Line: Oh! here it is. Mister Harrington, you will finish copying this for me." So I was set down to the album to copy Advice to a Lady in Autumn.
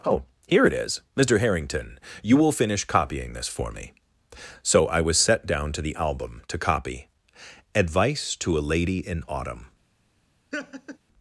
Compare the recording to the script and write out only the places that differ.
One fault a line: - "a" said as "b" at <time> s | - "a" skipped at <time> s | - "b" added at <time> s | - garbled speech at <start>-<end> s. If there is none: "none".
none